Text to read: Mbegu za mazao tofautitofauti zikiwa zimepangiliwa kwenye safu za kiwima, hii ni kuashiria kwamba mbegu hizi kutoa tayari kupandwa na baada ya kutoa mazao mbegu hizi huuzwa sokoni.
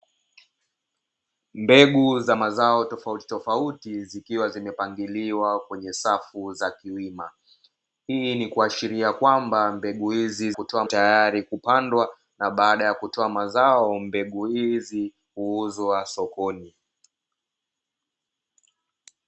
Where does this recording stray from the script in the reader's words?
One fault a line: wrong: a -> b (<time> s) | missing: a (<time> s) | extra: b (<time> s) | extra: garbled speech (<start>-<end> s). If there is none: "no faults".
no faults